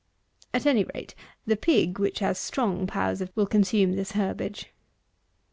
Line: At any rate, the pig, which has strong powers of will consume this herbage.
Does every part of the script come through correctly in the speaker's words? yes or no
yes